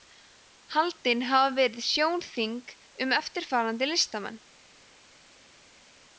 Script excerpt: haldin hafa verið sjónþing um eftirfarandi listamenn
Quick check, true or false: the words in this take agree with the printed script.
true